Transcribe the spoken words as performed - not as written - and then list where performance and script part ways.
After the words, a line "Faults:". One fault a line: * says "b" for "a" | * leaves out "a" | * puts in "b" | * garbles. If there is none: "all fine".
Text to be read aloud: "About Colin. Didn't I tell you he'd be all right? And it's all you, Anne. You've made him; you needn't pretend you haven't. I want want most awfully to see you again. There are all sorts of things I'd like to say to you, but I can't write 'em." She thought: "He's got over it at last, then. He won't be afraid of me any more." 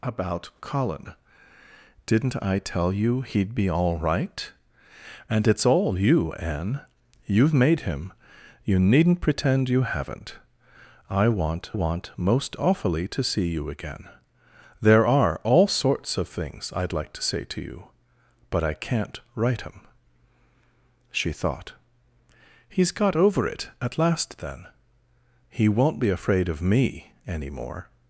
"About Colin. Didn't I tell you he'd be all right? And it's all you, Anne. You've made him; you needn't pretend you haven't. I want want most awfully to see you again. There are all sorts of things I'd like to say to you, but I can't write 'em." She thought: "He's got over it at last, then. He won't be afraid of me any more."
Faults:
all fine